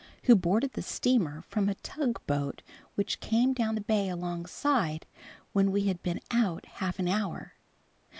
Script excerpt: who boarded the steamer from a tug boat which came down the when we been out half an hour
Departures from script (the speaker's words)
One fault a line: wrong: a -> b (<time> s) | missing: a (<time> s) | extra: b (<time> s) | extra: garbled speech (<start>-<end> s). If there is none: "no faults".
extra: bay alongside (3.8 s)
extra: had (5.9 s)